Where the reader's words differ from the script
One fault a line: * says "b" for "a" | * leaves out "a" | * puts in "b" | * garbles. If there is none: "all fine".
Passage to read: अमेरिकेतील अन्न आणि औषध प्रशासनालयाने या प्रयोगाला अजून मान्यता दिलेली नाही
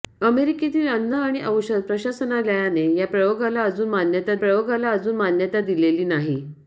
* puts in "प्रयोगाला अजून मान्यता"